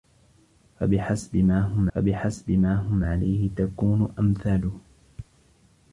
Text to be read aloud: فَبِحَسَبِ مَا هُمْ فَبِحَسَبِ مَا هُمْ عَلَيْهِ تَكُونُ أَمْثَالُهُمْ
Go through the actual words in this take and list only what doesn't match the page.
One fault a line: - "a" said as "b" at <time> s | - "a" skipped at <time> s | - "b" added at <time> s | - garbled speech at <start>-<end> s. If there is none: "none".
none